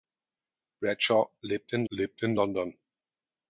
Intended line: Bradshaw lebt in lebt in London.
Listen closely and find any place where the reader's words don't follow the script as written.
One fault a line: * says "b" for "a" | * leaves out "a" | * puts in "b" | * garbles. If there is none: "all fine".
all fine